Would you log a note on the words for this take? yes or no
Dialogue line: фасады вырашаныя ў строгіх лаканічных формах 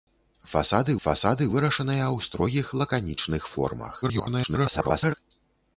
yes